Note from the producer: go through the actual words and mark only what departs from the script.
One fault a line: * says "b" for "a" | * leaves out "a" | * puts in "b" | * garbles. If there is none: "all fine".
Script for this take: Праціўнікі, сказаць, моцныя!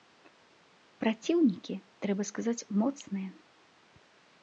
* puts in "трэба"